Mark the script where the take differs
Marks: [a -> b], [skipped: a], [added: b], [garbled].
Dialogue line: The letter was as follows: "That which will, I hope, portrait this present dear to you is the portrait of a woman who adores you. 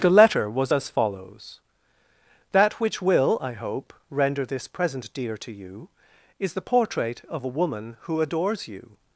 The letter was as follows: "That which will, I hope, [portrait -> render] this present dear to you is the portrait of a woman who adores you.